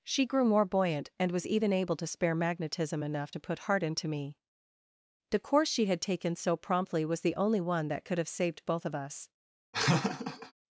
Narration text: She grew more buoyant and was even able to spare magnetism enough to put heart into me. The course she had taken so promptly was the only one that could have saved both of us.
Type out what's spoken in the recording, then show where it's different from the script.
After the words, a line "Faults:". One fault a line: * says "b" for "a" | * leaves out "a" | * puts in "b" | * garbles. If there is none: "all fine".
She grew more buoyant and was even able to spare magnetism enough to put heart into me. The course she had taken so promptly was the only one that could have saved both of us.
Faults:
all fine